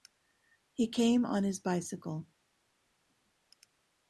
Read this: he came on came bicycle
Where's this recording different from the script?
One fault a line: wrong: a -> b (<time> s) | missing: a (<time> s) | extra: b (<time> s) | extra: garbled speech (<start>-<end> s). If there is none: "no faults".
wrong: came -> his (1.4 s)